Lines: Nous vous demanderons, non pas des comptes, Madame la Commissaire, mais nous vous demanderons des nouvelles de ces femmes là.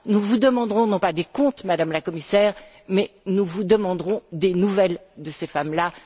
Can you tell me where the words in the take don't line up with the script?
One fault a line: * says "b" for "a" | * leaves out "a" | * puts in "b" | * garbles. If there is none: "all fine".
all fine